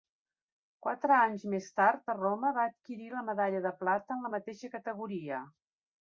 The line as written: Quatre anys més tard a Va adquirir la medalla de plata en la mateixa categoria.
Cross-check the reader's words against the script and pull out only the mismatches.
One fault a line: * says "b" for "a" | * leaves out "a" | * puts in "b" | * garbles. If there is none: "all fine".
* puts in "Roma"